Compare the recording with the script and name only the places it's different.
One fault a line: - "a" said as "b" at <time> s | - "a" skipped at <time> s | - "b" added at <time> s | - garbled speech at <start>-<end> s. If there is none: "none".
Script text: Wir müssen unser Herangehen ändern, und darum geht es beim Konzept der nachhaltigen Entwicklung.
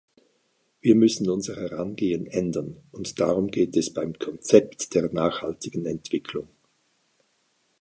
none